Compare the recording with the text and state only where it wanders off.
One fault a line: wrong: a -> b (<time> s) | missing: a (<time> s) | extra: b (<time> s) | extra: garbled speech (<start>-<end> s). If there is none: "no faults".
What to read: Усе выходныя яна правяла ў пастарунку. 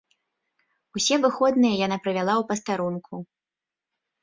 no faults